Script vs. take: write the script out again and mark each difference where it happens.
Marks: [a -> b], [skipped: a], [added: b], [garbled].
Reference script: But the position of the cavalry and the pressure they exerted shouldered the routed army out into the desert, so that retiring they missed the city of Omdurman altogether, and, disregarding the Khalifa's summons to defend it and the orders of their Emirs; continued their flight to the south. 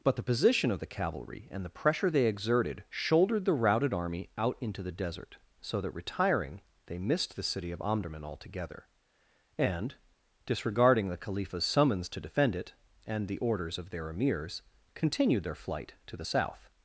But the position of the cavalry and the pressure they exerted shouldered the routed army out into the desert, so that retiring they missed the city of Omdurman altogether, and, disregarding the Khalifa's summons to defend it and the orders of their Emirs; continued their flight to the south.